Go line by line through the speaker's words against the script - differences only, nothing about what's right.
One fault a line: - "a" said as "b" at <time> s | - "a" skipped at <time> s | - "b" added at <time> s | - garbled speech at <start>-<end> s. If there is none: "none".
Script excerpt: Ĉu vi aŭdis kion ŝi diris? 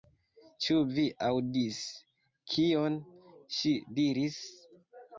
none